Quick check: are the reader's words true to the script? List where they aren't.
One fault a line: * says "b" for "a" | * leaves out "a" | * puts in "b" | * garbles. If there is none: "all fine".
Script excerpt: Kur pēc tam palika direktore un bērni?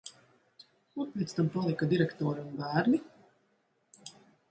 all fine